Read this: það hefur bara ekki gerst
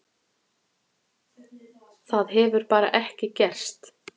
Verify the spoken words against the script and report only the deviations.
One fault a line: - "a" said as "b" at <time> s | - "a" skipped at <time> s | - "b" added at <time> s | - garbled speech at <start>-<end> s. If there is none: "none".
none